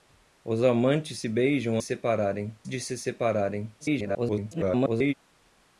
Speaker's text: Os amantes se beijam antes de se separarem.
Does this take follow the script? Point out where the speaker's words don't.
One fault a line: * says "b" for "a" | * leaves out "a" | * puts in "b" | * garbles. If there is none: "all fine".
* says "separarem" for "antes"
* garbles